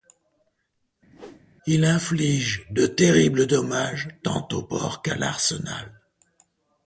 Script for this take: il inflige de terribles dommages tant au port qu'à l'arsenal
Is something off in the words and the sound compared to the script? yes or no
yes